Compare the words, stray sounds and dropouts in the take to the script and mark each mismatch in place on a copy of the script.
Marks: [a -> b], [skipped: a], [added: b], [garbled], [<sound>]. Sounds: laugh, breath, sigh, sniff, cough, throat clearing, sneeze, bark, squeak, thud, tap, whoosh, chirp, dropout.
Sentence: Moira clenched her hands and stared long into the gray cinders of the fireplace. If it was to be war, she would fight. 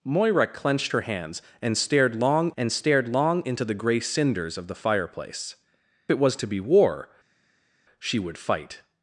Moira clenched her hands and stared long [added: and stared long] into the gray cinders of the fireplace. [skipped: If] it was to be war, she would fight.